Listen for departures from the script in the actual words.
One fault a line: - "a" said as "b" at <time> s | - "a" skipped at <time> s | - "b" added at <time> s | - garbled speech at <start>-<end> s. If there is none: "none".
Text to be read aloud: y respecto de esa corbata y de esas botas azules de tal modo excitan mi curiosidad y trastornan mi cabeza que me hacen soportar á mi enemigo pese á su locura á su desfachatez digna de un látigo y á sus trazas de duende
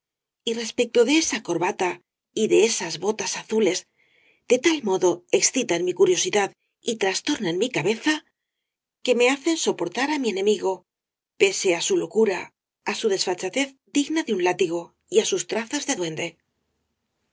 none